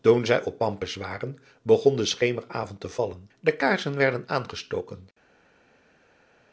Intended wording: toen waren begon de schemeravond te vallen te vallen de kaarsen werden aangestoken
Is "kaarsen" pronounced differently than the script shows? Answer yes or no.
no